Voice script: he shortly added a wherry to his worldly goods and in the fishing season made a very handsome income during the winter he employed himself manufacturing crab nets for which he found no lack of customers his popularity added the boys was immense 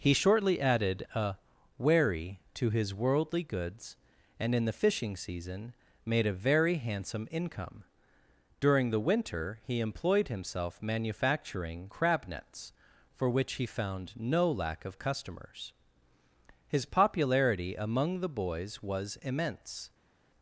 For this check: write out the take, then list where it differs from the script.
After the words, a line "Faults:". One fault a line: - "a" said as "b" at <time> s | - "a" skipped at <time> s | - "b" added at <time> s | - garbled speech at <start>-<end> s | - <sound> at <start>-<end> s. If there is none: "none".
he shortly added a wherry to his worldly goods and in the fishing season made a very handsome income during the winter he employed himself manufacturing crab nets for which he found no lack of customers his popularity among the boys was immense
Faults:
- "added" said as "among" at 17.7 s